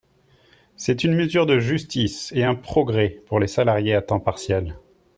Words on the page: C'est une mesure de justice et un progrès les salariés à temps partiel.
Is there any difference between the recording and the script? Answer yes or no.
yes